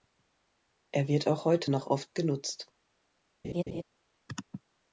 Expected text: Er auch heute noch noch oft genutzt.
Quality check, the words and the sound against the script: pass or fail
fail